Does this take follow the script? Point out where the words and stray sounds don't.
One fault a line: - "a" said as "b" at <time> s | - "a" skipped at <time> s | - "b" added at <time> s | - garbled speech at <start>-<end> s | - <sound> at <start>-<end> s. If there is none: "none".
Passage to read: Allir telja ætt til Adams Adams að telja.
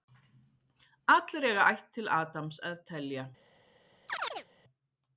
- "telja" said as "eiga" at 1.5 s
- "Adams" skipped at 2.6 s
- chirp at 4.1-4.5 s